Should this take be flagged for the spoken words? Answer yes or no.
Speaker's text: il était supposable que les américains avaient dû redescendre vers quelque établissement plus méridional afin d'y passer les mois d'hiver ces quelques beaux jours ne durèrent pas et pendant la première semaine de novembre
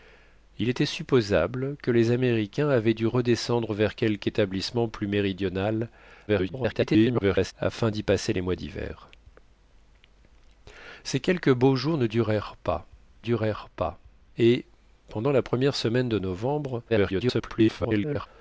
yes